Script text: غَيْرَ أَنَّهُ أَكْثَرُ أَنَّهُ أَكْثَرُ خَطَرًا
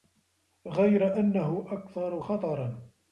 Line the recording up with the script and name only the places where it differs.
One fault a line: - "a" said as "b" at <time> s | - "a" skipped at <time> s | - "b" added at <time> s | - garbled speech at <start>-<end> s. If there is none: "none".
- "أَنَّهُ أَكْثَرُ" skipped at 2.2 s